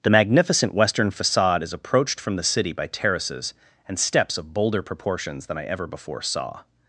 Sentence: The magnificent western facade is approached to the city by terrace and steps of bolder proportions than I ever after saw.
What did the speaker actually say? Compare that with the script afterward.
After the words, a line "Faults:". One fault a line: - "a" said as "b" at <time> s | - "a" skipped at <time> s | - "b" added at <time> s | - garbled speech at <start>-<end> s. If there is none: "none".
The magnificent western facade is approached from the city by terraces and steps of bolder proportions than I ever before saw.
Faults:
- "to" said as "from" at 2.2 s
- "terrace" said as "terraces" at 2.9 s
- "after" said as "before" at 5.9 s